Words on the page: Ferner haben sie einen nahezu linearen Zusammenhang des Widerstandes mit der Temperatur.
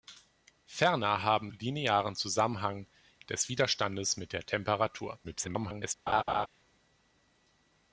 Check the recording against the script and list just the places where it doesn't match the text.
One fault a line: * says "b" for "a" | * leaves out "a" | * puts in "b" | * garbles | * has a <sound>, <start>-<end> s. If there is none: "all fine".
* leaves out "sie einen nahezu"
* garbles
* has a laugh, 6.1-6.5 s